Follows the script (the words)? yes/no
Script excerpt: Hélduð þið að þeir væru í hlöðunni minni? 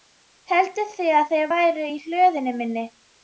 yes